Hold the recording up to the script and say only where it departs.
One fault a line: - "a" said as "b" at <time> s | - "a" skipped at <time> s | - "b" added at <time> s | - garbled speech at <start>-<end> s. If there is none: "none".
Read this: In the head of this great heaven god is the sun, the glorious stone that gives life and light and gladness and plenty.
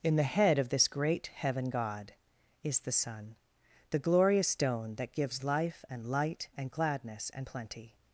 none